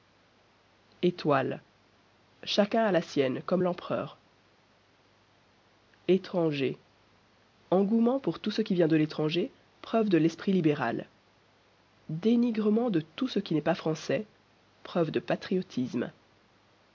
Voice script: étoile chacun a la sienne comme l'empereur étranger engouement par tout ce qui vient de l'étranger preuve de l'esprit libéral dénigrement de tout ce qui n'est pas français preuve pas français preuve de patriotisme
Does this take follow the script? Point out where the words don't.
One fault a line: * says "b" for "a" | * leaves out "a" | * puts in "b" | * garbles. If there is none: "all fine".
* says "pour" for "par"
* leaves out "pas français preuve"